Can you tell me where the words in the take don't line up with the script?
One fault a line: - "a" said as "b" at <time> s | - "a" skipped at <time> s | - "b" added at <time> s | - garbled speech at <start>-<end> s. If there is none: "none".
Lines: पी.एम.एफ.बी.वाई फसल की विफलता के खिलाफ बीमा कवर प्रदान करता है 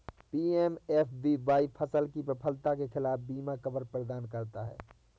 none